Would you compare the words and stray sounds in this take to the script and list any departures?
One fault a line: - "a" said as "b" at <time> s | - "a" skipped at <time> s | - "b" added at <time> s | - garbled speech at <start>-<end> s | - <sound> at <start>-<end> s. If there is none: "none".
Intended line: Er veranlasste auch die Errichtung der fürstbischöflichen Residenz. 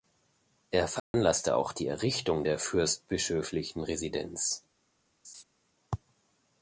- dropout at 1.0-1.1 s
- laugh at 5.2-5.4 s